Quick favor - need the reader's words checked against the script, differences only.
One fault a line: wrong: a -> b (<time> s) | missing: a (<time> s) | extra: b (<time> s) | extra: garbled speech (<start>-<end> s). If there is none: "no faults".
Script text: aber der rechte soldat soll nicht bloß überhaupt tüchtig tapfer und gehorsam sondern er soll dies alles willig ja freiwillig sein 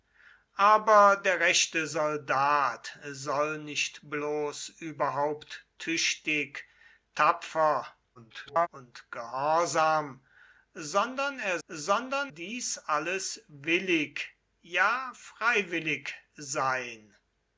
extra: garbled speech (8.1-8.7 s)
wrong: soll -> sondern (11.7 s)